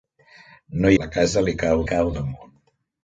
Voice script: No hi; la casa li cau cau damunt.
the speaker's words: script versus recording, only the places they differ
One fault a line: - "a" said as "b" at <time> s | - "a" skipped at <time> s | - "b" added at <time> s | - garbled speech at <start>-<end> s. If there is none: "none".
none